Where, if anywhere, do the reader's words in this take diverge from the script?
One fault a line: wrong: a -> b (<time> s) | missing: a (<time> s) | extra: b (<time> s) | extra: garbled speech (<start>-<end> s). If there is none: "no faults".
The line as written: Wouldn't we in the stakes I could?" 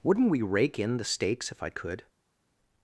extra: rake (0.4 s)
extra: if (1.5 s)